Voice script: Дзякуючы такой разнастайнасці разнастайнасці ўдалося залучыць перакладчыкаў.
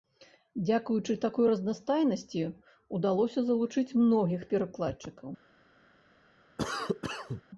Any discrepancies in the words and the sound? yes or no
yes